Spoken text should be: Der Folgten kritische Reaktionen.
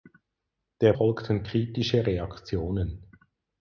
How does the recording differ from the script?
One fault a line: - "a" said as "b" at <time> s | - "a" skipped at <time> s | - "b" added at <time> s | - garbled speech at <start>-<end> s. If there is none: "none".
none